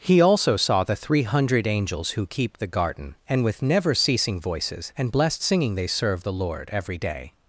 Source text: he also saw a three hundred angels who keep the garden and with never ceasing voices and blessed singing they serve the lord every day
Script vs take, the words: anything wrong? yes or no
yes